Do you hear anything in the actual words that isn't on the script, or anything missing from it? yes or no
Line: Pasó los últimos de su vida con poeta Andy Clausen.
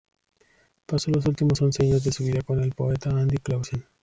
yes